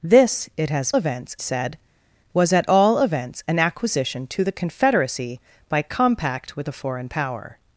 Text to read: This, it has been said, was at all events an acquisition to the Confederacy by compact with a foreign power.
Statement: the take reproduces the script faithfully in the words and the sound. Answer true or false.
false